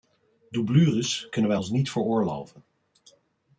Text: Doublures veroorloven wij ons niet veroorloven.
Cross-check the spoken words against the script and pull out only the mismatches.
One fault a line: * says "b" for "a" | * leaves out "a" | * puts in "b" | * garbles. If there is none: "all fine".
* says "kunnen" for "veroorloven"